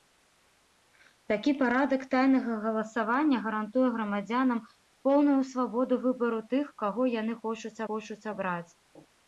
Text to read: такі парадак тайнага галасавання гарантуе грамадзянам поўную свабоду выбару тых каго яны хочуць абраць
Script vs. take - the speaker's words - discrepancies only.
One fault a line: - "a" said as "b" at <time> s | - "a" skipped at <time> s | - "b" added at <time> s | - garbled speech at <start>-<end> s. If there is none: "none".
- "хочуць" added at 7.9 s